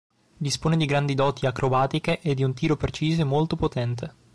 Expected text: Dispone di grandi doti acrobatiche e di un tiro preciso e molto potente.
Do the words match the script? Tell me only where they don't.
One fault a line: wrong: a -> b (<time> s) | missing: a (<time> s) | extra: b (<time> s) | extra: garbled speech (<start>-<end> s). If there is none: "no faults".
no faults